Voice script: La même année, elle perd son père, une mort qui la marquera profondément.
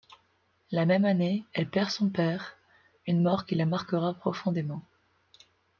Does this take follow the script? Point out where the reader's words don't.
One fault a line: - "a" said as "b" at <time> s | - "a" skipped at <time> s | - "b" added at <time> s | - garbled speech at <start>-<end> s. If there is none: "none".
none